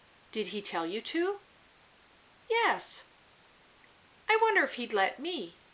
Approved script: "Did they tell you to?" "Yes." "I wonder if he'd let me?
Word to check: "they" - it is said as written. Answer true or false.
false